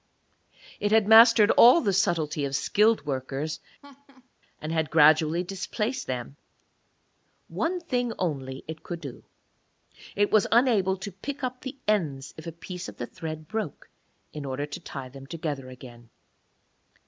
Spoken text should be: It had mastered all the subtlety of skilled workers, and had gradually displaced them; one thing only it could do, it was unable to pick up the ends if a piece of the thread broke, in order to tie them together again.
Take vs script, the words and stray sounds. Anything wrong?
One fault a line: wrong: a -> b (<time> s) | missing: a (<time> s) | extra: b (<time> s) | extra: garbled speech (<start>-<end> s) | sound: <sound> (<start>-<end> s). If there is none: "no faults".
sound: laugh (3.8-4.3 s)